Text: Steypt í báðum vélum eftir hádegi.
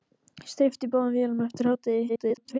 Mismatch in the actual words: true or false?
true